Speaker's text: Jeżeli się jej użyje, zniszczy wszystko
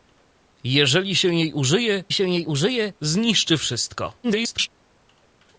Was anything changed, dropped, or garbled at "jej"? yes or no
no